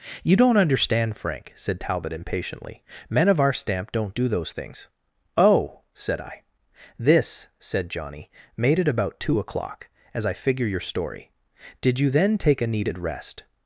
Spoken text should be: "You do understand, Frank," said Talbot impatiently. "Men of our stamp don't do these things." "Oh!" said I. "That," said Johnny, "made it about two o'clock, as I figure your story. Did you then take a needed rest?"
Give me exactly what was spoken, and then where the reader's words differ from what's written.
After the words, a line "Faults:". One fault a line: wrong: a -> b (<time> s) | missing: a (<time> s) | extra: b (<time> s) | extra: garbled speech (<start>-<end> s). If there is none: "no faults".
"You don't understand, Frank," said Talbot impatiently. "Men of our stamp don't do those things." "Oh!" said I. "This," said Johnny, "made it about two o'clock, as I figure your story. Did you then take a needed rest?"
Faults:
wrong: do -> don't (0.3 s)
wrong: these -> those (4.3 s)
wrong: That -> This (7.0 s)